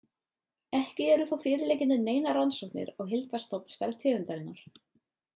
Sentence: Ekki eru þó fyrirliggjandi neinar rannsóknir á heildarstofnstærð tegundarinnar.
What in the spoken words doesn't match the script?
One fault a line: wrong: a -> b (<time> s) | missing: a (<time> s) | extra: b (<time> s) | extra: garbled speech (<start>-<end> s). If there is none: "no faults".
no faults